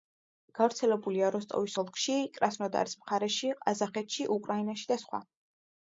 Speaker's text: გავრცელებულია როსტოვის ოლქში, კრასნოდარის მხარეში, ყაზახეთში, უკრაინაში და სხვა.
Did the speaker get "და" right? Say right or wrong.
right